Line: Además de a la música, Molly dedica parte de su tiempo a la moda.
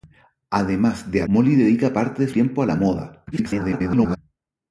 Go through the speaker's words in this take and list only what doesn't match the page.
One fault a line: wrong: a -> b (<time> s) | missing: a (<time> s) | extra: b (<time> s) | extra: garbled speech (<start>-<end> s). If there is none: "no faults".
missing: la música (1.3 s)
missing: su (2.3 s)
extra: garbled speech (3.3-4.2 s)